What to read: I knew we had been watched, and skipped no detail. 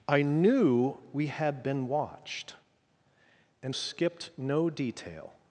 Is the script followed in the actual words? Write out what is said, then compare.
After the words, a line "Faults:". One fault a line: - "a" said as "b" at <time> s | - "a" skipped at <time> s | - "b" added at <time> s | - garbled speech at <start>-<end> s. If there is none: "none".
I knew we had been watched, and skipped no detail.
Faults:
none